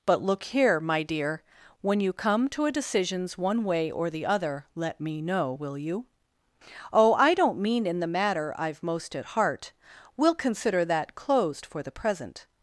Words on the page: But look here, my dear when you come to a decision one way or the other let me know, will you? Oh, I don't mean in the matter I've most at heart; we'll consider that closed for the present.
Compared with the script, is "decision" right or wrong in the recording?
wrong